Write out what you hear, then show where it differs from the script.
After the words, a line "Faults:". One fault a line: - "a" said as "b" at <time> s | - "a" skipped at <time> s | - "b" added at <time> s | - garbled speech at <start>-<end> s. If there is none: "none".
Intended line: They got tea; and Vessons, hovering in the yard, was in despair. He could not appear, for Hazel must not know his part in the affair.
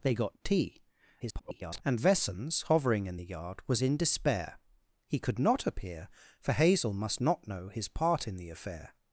They got tea; [garbled] and Vessons, hovering in the yard, was in despair. He could not appear, for Hazel must not know his part in the affair.
Faults:
- garbled speech at 1.2-1.8 s